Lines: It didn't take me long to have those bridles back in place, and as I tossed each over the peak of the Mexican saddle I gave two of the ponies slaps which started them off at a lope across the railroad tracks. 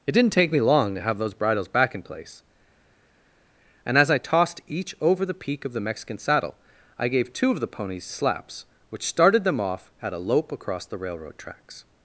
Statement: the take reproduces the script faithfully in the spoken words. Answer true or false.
true